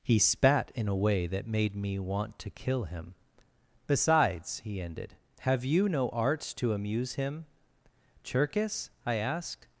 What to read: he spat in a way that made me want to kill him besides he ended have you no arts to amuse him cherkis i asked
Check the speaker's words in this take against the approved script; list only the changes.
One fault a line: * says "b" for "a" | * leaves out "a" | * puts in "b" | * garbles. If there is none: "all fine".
all fine